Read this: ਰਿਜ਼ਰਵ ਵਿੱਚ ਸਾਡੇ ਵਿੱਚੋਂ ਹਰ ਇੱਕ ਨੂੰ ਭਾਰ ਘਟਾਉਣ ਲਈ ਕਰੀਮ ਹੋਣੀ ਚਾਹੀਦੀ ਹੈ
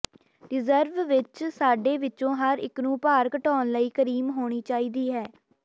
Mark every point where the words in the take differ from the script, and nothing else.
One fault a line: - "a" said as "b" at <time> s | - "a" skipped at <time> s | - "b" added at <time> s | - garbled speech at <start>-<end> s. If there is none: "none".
none